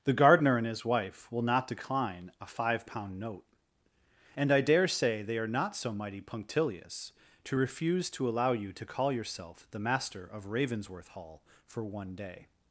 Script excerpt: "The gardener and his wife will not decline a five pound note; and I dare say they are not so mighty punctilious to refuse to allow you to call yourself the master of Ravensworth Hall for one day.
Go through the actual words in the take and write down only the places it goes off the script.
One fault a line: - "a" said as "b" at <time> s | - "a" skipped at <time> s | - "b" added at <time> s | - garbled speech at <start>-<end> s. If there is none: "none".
none